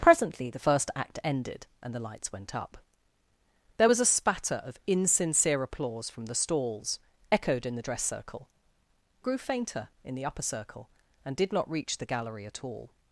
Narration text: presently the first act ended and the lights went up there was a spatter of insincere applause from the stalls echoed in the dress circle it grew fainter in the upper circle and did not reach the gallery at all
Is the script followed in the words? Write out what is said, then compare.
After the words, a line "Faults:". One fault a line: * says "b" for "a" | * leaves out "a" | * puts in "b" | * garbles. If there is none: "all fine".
presently the first act ended and the lights went up there was a spatter of insincere applause from the stalls echoed in the dress circle grew fainter in the upper circle and did not reach the gallery at all
Faults:
* leaves out "it"